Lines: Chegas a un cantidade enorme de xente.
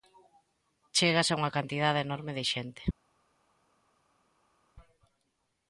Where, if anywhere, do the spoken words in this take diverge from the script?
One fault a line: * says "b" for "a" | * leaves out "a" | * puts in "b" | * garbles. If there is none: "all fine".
* says "unha" for "un"